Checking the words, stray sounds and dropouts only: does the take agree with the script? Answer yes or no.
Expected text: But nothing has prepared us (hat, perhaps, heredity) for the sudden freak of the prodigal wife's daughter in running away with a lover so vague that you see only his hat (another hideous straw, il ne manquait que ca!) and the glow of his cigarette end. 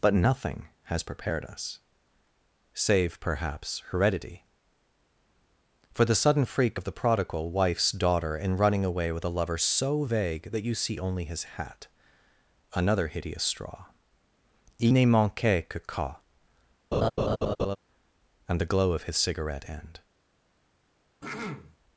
no